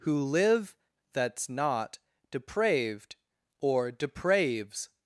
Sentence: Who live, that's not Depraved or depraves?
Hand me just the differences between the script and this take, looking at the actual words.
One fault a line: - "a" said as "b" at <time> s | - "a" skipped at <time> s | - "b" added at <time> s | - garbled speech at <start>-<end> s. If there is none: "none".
none